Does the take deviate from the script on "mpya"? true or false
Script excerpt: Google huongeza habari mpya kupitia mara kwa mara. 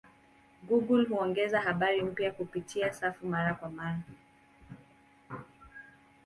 false